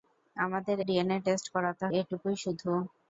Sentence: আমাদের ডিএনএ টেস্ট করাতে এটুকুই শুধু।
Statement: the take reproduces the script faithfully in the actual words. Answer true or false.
true